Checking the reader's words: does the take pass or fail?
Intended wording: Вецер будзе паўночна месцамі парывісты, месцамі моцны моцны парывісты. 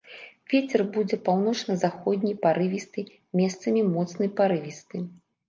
fail